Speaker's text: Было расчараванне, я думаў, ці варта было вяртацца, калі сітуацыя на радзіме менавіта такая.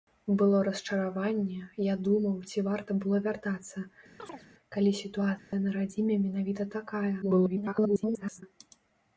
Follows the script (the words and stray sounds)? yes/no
no